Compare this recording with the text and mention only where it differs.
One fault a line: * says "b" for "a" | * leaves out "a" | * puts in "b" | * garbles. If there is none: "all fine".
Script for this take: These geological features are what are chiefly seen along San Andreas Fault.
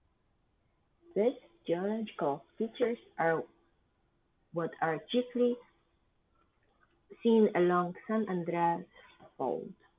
all fine